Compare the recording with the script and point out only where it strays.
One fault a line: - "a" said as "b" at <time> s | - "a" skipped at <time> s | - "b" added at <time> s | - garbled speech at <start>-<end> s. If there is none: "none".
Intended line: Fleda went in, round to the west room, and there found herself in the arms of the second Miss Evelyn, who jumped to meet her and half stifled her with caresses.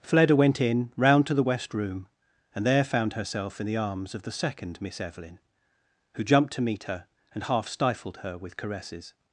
none